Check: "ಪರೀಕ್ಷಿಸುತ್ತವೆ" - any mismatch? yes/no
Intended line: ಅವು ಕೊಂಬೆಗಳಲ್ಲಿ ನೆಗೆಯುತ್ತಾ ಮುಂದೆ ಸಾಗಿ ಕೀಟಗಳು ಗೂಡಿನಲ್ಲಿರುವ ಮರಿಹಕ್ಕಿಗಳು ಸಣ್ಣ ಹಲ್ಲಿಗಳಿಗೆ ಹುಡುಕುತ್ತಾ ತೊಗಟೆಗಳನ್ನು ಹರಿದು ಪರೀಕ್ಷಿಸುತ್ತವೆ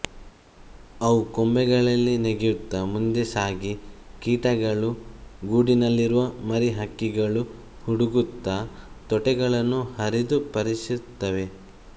no